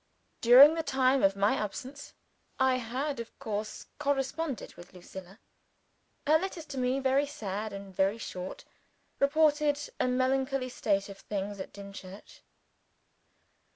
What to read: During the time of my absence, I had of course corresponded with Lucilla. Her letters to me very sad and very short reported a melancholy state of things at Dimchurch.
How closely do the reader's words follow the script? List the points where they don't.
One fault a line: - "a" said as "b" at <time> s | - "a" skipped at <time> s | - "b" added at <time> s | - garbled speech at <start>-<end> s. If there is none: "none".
none